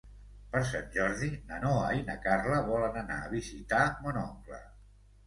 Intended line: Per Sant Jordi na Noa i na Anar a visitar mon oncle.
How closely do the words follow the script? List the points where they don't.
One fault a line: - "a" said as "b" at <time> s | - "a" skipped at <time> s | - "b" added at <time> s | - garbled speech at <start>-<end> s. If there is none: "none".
- "Carla volen" added at 2.3 s